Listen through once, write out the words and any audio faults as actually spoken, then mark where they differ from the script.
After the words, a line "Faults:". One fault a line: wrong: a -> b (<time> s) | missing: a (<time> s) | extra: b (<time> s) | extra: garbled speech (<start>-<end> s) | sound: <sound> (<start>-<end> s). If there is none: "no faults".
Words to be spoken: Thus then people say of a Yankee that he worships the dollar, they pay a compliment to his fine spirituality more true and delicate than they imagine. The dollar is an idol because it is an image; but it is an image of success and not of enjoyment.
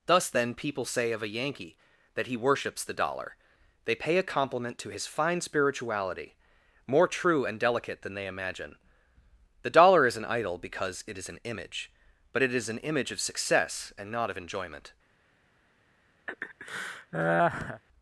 Thus then people say of a Yankee that he worships the dollar, they pay a compliment to his fine spirituality more true and delicate than they imagine. The dollar is an idol because it is an image; but it is an image of success and not of enjoyment.
Faults:
sound: laugh (16.3-17.8 s)